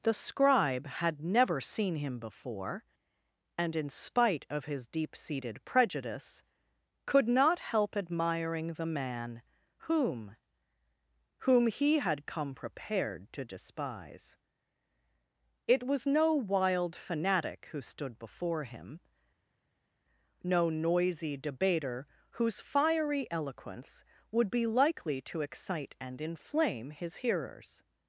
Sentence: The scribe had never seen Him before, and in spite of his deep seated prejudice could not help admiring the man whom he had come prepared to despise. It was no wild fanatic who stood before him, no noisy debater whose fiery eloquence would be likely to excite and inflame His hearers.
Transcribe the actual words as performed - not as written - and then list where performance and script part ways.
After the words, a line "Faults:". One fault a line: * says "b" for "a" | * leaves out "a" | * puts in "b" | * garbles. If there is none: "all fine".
The scribe had never seen Him before, and in spite of his deep seated prejudice could not help admiring the man whom whom he had come prepared to despise. It was no wild fanatic who stood before him, no noisy debater whose fiery eloquence would be likely to excite and inflame His hearers.
Faults:
* puts in "whom"